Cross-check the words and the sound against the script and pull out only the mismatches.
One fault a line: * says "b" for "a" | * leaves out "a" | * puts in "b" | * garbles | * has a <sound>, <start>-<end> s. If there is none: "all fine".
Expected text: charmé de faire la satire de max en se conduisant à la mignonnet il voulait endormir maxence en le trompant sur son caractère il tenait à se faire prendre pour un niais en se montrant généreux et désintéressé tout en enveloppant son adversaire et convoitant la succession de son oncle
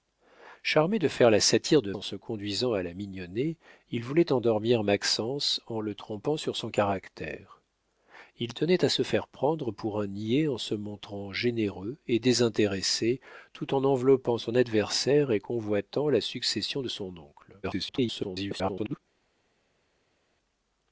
* leaves out "max"
* garbles